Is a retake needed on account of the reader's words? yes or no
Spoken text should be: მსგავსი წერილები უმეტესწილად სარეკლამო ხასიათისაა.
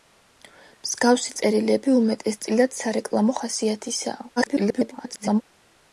yes